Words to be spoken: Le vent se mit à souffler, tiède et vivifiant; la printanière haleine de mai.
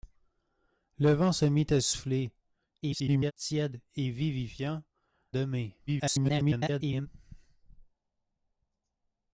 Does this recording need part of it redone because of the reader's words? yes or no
yes